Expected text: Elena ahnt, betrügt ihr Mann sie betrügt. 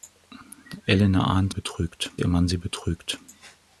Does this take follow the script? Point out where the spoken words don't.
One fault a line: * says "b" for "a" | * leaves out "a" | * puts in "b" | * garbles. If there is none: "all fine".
all fine